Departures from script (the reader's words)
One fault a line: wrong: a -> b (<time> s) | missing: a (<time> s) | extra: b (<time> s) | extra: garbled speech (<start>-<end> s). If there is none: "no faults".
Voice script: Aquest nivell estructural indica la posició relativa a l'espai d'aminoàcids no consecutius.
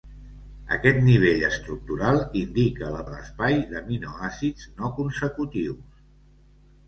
missing: posició relativa (3.0 s)